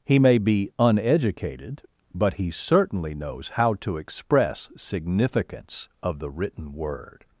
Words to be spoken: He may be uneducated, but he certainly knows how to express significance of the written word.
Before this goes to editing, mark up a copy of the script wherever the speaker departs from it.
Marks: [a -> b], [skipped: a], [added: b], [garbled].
He may be uneducated, but he certainly knows how to express significance of the written word.